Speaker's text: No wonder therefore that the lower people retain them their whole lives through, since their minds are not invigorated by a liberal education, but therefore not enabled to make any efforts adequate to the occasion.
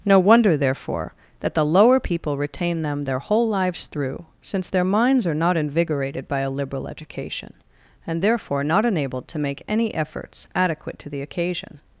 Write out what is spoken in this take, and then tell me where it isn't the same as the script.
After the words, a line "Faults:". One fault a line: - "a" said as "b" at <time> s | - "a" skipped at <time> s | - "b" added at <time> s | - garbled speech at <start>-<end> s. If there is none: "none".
No wonder therefore that the lower people retain them their whole lives through, since their minds are not invigorated by a liberal education, and therefore not enabled to make any efforts adequate to the occasion.
Faults:
- "but" said as "and" at 8.1 s